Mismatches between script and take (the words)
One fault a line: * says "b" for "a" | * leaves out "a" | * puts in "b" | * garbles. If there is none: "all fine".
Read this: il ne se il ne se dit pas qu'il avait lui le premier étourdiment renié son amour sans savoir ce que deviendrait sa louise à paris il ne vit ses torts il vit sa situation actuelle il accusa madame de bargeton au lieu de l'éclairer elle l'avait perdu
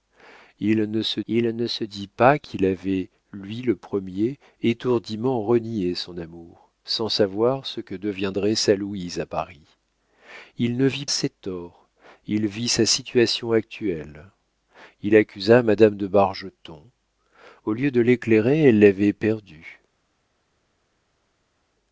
all fine